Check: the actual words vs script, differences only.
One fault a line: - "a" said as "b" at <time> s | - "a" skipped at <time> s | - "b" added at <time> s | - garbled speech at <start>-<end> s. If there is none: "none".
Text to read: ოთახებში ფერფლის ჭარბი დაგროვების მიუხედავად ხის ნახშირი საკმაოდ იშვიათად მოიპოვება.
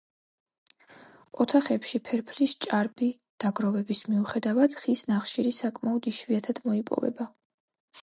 none